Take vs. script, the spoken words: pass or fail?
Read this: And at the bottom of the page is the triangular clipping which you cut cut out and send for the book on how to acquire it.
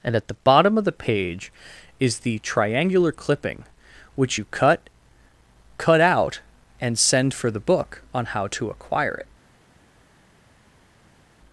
pass